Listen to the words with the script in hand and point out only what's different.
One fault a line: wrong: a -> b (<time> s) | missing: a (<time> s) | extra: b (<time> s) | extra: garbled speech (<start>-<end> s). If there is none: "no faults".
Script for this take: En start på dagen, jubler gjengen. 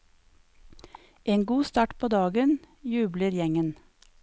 extra: god (1.4 s)